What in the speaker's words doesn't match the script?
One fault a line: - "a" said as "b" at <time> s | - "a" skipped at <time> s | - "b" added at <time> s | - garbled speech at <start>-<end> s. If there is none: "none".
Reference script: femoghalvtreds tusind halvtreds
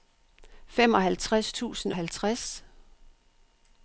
none